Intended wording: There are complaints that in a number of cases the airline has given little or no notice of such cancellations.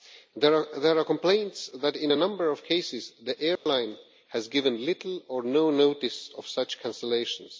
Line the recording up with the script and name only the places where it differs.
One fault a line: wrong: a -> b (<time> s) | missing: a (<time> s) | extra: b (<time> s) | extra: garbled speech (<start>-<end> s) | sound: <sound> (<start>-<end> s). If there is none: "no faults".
sound: dropout (3.6-3.7 s)